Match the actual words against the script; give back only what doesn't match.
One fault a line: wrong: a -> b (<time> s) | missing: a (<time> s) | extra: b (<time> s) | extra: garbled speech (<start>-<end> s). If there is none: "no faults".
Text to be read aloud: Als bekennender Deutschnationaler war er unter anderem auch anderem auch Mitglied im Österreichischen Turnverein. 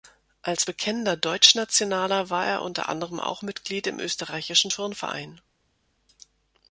missing: anderem auch (3.4 s)